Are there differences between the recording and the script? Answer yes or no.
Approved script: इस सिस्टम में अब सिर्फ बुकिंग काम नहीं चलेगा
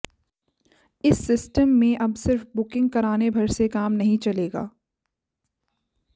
yes